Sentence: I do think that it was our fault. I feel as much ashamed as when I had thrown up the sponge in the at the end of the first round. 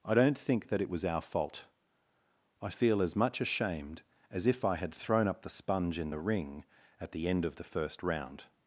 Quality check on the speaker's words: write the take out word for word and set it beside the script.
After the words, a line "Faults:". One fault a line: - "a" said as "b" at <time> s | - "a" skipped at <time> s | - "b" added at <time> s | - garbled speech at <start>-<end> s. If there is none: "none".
I don't think that it was our fault. I feel as much ashamed as if I had thrown up the sponge in the ring at the end of the first round.
Faults:
- "do" said as "don't" at 0.1 s
- "when" said as "if" at 4.5 s
- "ring" added at 6.2 s